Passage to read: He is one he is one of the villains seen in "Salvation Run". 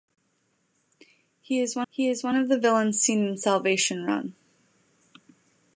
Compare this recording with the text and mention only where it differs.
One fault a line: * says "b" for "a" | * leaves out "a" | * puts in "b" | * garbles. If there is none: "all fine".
all fine